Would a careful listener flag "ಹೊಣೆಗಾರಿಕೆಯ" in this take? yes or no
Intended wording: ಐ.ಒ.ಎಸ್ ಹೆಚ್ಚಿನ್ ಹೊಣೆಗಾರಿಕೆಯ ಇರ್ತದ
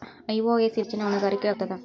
no